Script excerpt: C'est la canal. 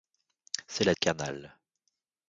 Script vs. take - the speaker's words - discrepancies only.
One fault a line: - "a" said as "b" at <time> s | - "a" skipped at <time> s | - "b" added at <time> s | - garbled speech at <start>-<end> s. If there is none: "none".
none